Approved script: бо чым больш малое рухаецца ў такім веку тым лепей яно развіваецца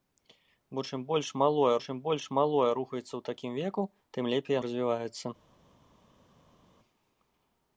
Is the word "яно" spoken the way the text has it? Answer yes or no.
no